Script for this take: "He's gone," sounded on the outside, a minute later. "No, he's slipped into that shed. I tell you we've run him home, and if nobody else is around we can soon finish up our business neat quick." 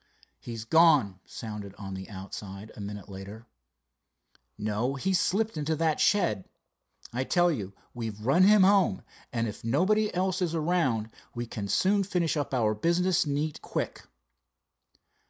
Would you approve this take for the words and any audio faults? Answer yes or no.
yes